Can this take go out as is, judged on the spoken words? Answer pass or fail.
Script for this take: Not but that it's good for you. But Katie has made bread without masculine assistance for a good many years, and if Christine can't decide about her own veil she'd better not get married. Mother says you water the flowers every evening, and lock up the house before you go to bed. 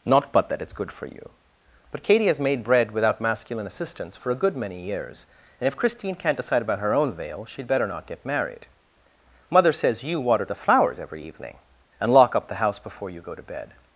pass